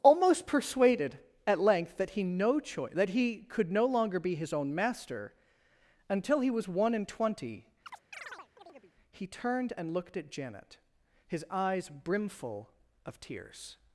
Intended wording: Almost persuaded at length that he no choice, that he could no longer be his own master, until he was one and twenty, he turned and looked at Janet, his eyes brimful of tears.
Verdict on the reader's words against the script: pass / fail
pass